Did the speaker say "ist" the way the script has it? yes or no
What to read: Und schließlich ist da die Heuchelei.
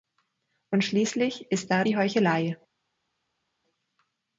yes